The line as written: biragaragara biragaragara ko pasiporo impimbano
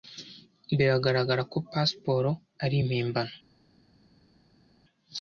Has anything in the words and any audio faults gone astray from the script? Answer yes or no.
yes